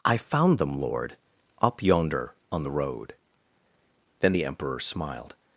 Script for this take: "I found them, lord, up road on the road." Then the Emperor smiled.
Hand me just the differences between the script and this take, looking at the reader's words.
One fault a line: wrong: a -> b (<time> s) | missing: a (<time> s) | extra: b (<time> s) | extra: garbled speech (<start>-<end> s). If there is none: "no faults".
wrong: road -> yonder (1.8 s)